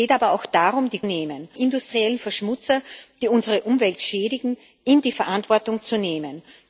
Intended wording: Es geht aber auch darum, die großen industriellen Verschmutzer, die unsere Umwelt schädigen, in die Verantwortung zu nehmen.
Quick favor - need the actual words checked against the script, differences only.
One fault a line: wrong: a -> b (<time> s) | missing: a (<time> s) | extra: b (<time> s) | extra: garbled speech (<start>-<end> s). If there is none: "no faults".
wrong: großen -> nehmen (1.0 s)